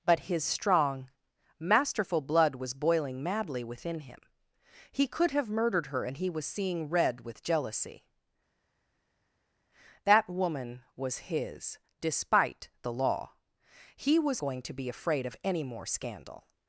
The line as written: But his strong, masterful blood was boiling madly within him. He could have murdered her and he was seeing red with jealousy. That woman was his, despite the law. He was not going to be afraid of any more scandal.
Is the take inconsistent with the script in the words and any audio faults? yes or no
yes